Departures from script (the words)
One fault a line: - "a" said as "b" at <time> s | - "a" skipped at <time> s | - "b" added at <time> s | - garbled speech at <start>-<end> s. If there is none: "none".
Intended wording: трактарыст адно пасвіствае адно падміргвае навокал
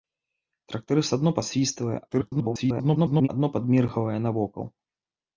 - garbled speech at 2.1-3.3 s